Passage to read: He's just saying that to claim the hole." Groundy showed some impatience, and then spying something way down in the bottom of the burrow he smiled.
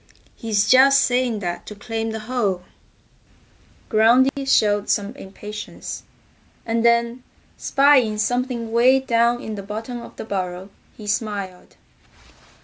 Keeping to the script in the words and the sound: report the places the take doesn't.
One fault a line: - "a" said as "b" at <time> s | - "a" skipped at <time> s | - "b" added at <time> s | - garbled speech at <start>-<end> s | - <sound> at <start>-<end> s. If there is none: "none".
- dropout at 4.3-4.4 s